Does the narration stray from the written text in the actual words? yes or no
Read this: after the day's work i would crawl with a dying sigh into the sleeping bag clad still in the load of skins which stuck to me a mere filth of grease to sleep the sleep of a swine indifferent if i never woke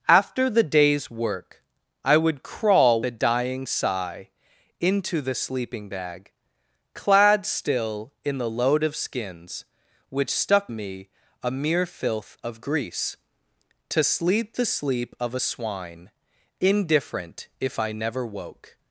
yes